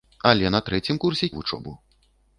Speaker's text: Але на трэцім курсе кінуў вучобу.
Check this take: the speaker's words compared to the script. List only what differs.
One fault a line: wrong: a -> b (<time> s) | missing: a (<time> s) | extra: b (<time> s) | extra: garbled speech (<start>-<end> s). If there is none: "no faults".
missing: кінуў (1.3 s)